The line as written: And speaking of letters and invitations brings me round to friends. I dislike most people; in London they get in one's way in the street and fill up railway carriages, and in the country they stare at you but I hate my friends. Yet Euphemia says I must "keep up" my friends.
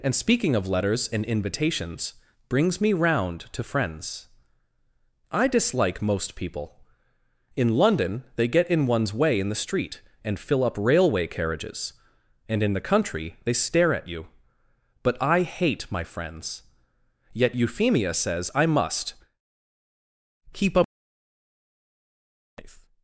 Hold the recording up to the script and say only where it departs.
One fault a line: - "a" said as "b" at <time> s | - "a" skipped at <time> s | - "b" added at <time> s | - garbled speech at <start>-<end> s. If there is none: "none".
- "my friends" skipped at 20.9 s